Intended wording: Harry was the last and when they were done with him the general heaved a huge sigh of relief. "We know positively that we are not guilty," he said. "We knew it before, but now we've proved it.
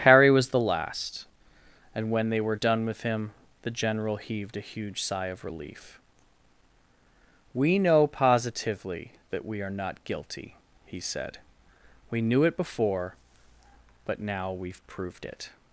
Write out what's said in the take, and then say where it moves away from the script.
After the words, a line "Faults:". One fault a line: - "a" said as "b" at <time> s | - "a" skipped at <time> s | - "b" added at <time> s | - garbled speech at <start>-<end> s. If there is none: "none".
Harry was the last and when they were done with him the general heaved a huge sigh of relief. "We know positively that we are not guilty," he said. "We knew it before, but now we've proved it.
Faults:
none